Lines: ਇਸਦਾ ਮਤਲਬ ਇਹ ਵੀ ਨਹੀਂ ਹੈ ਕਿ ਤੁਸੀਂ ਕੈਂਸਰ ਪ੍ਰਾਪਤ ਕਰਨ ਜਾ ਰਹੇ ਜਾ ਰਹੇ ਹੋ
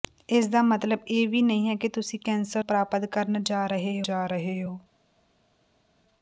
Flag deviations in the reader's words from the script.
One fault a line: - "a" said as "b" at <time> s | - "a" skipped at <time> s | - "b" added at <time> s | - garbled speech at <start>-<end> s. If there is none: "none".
none